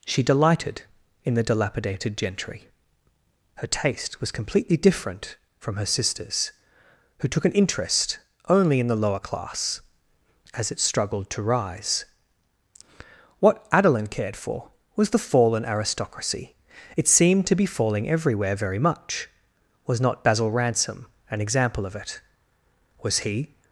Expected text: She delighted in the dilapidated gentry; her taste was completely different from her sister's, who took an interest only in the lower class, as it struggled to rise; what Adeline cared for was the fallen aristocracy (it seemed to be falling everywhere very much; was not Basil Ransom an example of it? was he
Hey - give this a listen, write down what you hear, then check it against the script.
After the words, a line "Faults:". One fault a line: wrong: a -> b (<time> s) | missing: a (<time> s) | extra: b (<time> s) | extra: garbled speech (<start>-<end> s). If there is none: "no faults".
She delighted in the dilapidated gentry; her taste was completely different from her sister's, who took an interest only in the lower class, as it struggled to rise; what Adeline cared for was the fallen aristocracy (it seemed to be falling everywhere very much; was not Basil Ransom an example of it? was he
Faults:
no faults